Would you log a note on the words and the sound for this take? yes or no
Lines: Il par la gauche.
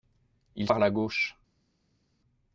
no